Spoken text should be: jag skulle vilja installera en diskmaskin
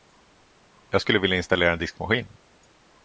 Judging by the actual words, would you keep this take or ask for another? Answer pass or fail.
pass